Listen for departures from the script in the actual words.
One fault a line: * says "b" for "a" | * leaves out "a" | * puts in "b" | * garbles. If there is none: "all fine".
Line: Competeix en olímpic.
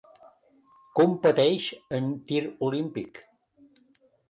* puts in "tir"